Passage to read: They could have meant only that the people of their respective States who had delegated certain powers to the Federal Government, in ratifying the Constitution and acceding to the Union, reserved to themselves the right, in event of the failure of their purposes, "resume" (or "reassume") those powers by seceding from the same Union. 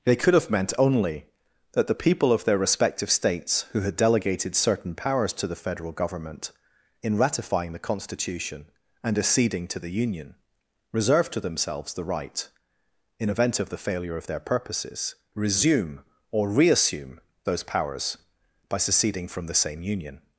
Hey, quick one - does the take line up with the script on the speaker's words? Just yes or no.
yes